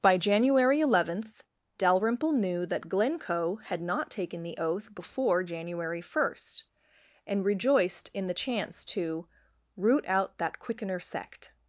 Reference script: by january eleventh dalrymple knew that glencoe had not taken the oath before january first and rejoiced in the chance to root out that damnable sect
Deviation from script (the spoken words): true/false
true